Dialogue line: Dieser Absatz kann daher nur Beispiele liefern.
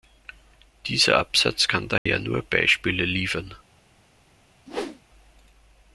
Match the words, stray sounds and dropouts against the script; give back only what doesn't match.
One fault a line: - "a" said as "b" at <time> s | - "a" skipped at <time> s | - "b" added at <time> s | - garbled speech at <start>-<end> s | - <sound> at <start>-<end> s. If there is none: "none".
- dropout at 2.0-2.1 s
- whoosh at 4.7-5.0 s